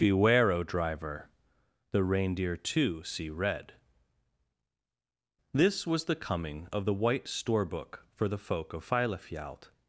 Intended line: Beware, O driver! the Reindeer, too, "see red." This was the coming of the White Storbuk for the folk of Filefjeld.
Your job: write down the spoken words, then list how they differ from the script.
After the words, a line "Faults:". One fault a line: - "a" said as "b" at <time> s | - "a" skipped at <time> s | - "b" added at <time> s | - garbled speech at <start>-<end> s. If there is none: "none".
Beware, O driver! the Reindeer, too, "see red." This was the coming of the White Storbuk for the folk of Filefjeld.
Faults:
none